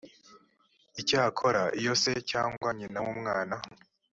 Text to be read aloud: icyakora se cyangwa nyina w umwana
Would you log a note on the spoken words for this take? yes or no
yes